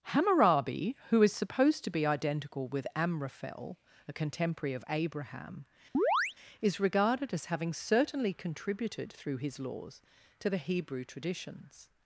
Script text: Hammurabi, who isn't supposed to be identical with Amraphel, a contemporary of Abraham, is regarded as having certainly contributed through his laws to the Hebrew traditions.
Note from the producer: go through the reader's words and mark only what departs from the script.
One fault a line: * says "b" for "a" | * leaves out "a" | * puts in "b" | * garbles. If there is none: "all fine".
* says "is" for "isn't"